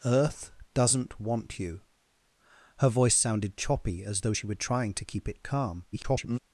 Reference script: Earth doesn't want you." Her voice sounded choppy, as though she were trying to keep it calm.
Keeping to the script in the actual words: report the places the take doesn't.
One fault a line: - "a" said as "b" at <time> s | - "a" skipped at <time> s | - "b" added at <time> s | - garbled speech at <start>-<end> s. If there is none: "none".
- garbled speech at 5.9-6.4 s